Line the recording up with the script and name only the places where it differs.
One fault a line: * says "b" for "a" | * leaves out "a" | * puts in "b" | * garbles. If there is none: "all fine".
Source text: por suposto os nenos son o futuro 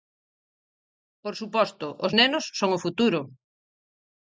all fine